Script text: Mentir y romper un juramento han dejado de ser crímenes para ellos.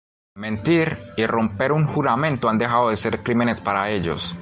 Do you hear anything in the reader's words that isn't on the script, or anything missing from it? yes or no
no